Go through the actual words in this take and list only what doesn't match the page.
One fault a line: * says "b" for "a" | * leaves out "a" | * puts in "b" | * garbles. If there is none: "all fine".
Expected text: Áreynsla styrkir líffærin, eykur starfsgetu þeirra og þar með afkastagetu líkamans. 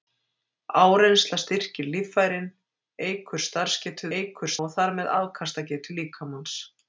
* says "eykur" for "þeirra"